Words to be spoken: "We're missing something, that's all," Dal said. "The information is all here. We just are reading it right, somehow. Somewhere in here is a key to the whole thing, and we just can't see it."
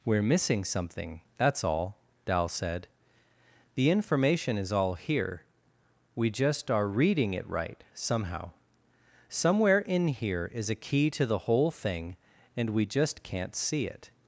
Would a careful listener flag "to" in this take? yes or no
no